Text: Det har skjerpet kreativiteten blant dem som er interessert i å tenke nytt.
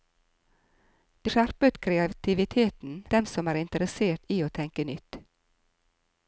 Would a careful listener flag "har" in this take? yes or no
yes